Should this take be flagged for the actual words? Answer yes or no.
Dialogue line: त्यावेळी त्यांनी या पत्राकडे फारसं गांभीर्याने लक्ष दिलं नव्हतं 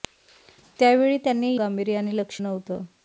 yes